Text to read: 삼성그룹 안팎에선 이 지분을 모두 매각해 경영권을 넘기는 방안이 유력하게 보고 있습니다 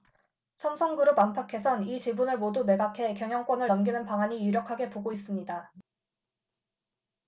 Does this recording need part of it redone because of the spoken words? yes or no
no